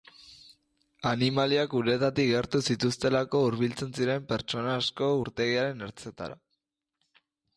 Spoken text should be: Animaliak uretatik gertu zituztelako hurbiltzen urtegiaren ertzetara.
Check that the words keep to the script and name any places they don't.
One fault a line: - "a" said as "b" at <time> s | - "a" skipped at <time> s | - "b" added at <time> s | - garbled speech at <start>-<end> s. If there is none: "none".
- "ziren pertsona asko" added at 4.0 s